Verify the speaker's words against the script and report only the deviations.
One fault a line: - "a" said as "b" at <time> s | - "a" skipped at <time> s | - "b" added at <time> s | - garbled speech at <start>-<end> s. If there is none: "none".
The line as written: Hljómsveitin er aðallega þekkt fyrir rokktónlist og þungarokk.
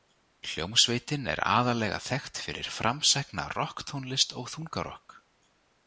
- "framsækna" added at 2.8 s